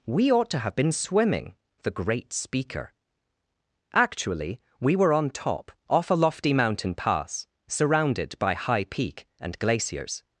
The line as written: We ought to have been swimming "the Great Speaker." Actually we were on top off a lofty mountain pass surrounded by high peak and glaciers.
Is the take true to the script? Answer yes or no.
yes